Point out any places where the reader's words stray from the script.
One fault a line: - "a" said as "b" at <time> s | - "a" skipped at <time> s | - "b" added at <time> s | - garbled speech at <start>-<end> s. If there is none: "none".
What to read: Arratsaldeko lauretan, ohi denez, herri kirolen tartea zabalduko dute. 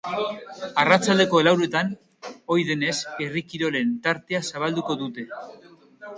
none